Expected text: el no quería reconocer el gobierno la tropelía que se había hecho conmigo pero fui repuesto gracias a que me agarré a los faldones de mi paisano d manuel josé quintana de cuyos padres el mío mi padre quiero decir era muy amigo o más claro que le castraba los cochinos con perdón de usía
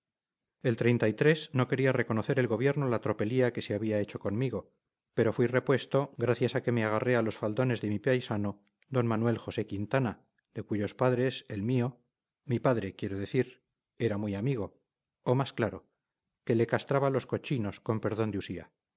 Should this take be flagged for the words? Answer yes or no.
no